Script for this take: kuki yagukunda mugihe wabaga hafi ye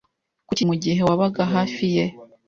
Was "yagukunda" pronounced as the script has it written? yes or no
no